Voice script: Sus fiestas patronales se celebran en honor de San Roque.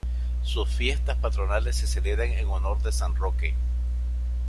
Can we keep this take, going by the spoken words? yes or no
yes